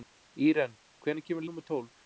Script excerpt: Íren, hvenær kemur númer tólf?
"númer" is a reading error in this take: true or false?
false